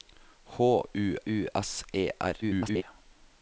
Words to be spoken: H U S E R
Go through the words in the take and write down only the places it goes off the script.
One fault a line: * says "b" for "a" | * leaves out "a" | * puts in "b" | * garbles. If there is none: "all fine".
* puts in "U"
* garbles